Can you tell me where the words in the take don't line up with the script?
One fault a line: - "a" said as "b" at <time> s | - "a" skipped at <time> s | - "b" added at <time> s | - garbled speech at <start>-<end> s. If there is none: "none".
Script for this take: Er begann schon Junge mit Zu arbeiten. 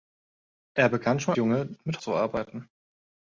none